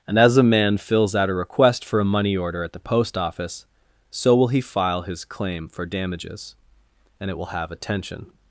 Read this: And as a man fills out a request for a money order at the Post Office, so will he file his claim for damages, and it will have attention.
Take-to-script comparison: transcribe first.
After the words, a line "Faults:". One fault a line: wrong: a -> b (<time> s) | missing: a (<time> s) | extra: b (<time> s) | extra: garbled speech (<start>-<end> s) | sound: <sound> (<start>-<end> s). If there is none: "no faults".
And as a man fills out a request for a money order at the Post Office, so will he file his claim for damages, and it will have attention.
Faults:
no faults